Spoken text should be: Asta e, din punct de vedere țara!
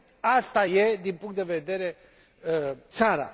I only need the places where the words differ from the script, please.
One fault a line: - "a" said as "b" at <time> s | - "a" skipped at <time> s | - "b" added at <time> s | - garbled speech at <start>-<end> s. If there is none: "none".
none